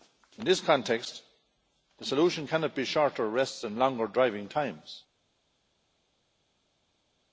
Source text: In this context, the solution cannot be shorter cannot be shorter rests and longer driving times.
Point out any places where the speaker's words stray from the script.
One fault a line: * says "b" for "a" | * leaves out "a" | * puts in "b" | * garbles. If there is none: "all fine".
* leaves out "cannot be shorter"